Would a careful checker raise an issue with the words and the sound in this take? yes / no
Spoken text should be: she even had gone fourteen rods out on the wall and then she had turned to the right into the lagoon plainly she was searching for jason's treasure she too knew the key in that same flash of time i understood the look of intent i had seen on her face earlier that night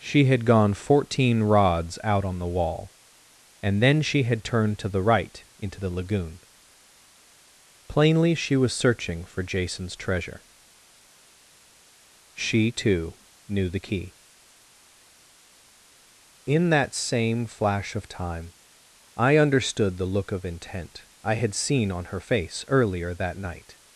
yes